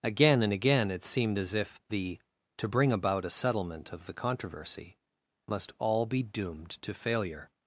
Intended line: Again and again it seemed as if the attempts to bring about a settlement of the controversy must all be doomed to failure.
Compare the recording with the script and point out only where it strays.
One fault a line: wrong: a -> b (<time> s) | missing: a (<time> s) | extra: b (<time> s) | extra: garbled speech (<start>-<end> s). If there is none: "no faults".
missing: attempts (2.2 s)